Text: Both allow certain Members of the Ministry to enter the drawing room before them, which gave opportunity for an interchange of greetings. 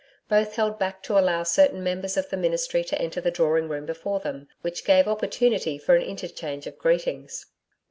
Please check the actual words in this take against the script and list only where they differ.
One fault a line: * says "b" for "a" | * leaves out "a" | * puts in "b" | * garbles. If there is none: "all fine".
* puts in "held back to"